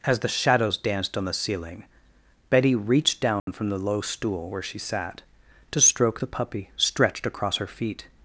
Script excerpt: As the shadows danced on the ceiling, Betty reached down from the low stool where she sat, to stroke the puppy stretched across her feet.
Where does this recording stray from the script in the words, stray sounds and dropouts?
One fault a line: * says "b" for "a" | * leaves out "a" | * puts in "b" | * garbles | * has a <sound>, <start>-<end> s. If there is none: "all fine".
* has a dropout, 3.4-3.5 s